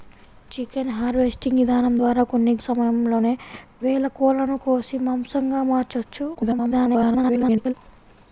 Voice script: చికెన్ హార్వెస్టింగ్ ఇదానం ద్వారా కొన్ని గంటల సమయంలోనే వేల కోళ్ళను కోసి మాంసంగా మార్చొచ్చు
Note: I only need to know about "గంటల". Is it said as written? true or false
false